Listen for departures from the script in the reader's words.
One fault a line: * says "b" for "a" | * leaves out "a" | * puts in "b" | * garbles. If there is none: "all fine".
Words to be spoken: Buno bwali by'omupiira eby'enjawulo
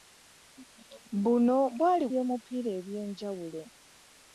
all fine